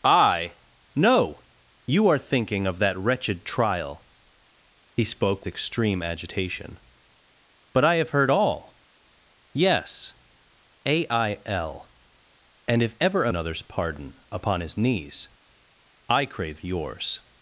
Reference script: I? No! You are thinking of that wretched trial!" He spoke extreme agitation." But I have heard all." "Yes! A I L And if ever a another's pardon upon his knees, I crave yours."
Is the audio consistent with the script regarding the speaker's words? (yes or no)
yes